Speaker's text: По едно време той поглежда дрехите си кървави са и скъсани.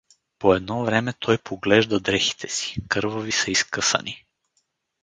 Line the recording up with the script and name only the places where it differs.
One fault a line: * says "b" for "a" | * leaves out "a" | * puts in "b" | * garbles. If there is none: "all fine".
all fine